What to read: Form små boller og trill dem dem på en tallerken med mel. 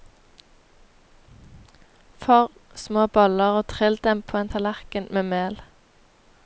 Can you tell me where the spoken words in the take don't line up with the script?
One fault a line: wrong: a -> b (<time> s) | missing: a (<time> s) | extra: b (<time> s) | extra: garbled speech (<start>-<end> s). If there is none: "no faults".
missing: dem (4.2 s)